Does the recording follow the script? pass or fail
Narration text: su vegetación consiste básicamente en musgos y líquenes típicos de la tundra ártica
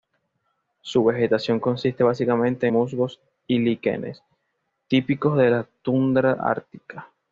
fail